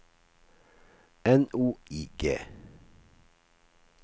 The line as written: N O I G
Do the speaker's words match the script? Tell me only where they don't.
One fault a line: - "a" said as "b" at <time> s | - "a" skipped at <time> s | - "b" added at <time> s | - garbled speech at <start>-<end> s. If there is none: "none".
none